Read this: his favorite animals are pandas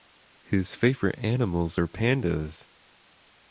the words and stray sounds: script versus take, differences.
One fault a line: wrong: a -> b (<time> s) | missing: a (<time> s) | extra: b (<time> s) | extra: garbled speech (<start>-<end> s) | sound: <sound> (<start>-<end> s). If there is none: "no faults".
no faults